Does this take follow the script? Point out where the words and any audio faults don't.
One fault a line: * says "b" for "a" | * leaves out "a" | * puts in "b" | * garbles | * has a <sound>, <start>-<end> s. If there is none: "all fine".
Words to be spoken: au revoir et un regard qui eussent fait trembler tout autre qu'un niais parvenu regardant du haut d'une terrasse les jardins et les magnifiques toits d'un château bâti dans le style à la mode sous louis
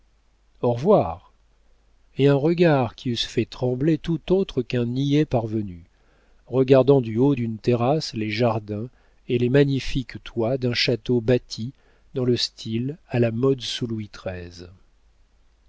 all fine